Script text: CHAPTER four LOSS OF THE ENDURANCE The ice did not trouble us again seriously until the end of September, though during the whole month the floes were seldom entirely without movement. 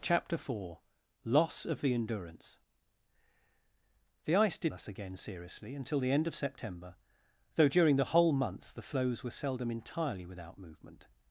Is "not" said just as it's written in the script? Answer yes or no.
no